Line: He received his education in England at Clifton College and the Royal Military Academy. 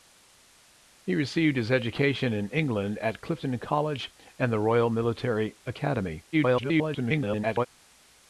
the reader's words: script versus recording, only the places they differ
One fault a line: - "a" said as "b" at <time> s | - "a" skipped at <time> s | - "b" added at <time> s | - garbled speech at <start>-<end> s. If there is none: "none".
- garbled speech at 6.3-7.7 s